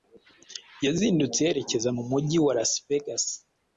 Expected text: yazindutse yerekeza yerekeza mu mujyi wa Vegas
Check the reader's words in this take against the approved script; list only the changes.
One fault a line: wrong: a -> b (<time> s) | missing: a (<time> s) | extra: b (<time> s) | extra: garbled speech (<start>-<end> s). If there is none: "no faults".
missing: yerekeza (1.9 s)
extra: Las (2.6 s)